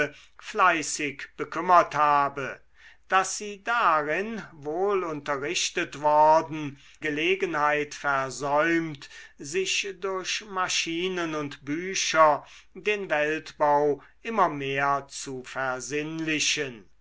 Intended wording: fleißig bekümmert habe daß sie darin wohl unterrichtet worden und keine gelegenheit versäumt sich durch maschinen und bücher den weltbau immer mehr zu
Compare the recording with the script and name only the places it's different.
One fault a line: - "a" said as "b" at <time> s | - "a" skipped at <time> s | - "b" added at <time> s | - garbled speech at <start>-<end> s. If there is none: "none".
- "und keine" skipped at 6.8 s